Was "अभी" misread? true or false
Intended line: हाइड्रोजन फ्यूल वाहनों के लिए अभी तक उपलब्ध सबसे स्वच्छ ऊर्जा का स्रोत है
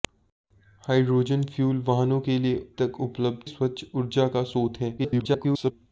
true